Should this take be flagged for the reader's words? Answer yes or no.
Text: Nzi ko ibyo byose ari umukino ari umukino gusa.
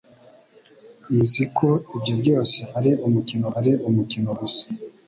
no